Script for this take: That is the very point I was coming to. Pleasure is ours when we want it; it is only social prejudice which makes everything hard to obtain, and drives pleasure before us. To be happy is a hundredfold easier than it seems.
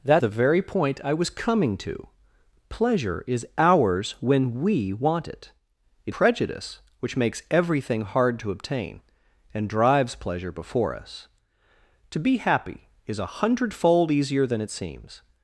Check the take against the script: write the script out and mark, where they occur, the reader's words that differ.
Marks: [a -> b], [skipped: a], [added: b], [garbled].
That [skipped: is] the very point I was coming to. Pleasure is ours when we want it; it [skipped: is only social] prejudice which makes everything hard to obtain, and drives pleasure before us. To be happy is a hundredfold easier than it seems.